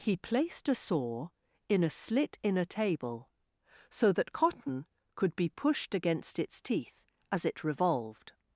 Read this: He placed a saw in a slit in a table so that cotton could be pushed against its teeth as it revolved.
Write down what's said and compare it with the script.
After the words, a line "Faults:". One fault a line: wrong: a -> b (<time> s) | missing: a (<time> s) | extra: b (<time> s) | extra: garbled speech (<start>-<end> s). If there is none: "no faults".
He placed a saw in a slit in a table so that cotton could be pushed against its teeth as it revolved.
Faults:
no faults